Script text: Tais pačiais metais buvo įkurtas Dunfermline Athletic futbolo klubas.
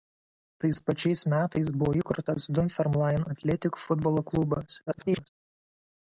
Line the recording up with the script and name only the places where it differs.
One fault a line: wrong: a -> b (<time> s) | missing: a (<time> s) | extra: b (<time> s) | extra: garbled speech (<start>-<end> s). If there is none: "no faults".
extra: garbled speech (4.9-5.3 s)